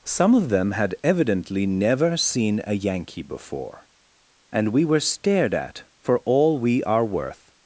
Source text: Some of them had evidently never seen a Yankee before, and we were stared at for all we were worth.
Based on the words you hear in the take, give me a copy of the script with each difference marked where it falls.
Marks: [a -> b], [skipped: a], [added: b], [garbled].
Some of them had evidently never seen a Yankee before, and we were stared at for all we [were -> are] worth.